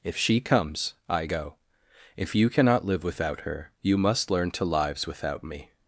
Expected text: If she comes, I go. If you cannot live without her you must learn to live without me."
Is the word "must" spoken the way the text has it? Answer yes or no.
yes